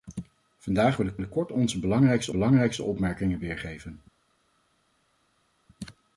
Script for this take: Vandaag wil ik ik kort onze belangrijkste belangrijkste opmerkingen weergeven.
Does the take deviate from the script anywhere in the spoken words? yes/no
no